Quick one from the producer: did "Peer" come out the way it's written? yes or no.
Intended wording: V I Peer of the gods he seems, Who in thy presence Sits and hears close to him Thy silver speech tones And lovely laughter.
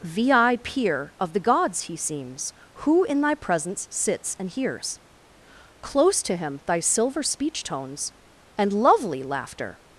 yes